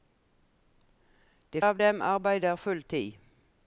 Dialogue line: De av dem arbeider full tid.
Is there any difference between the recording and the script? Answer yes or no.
no